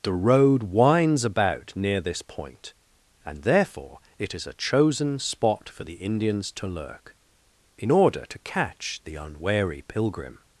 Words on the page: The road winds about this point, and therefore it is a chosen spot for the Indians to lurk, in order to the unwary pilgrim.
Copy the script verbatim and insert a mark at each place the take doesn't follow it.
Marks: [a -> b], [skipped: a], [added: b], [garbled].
The road winds about [added: near] this point, and therefore it is a chosen spot for the Indians to lurk, in order to [added: catch] the unwary pilgrim.